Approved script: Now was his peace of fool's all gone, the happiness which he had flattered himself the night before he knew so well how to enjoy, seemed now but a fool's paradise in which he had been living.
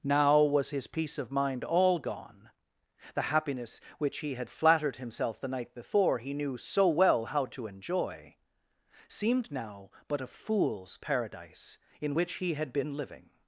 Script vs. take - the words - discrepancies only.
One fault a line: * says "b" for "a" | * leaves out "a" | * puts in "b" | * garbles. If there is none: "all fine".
* says "mind" for "fool's"